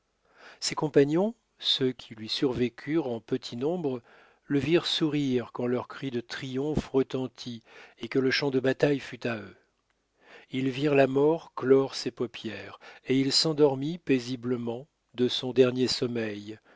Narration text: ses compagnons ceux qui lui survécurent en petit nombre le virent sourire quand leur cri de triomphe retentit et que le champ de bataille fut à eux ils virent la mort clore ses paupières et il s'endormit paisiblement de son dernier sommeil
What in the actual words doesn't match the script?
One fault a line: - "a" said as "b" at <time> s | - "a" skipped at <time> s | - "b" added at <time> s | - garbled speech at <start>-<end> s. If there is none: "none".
none